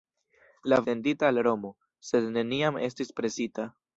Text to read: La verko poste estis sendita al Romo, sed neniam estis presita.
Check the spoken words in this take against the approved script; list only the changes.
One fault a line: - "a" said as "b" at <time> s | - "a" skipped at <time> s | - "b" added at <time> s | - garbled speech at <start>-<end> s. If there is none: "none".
- "verko poste estis" skipped at 0.8 s